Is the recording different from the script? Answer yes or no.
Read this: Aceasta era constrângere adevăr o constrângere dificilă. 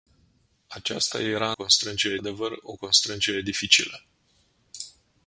no